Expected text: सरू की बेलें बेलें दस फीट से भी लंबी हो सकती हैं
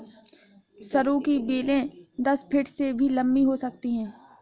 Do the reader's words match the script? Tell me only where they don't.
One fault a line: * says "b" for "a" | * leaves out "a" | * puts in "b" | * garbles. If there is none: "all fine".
* leaves out "बेलें"